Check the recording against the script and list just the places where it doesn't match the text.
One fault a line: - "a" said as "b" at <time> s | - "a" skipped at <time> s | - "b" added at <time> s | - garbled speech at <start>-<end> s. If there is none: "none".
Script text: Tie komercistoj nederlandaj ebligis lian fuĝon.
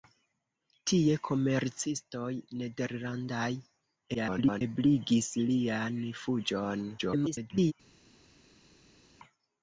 - garbled speech at 4.1-4.6 s
- garbled speech at 7.0-7.7 s